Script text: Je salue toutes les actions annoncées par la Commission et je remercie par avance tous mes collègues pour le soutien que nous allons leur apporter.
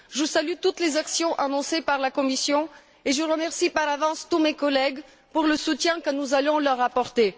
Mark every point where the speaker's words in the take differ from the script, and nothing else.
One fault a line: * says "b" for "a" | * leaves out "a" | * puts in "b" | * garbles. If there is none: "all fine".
all fine